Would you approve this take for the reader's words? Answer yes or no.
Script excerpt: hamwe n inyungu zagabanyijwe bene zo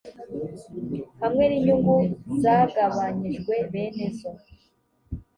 yes